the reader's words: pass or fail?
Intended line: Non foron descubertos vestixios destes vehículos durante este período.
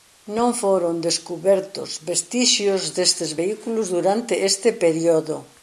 pass